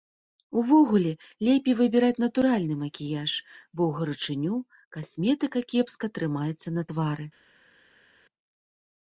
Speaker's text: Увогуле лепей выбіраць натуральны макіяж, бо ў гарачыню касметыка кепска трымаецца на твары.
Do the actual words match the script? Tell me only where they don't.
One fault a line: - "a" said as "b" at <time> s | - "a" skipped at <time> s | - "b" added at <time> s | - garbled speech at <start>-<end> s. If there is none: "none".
none